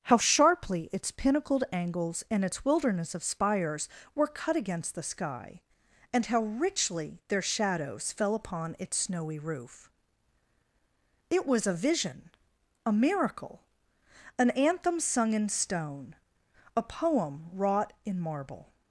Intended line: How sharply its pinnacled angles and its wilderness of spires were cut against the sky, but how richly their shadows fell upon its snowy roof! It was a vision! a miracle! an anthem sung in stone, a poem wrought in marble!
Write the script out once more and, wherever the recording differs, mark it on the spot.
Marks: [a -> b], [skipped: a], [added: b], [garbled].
How sharply its pinnacled angles and its wilderness of spires were cut against the sky, [but -> and] how richly their shadows fell upon its snowy roof! It was a vision! a miracle! an anthem sung in stone, a poem wrought in marble!